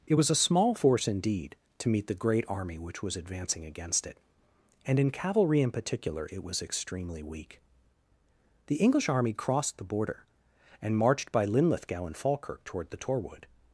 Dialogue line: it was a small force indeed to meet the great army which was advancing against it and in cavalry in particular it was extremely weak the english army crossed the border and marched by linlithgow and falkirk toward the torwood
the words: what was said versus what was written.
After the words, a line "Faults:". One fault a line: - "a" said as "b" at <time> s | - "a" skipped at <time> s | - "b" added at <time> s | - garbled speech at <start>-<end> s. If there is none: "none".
it was a small force indeed to meet the great army which was advancing against it and in cavalry in particular it was extremely weak the english army crossed the border and marched by linlithgow and falkirk toward the torwood
Faults:
none